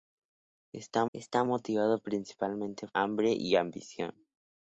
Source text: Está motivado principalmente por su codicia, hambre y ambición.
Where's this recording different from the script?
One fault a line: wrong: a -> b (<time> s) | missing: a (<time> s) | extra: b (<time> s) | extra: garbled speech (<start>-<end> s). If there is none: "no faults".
extra: está (1.1 s)
missing: por su codicia (2.9 s)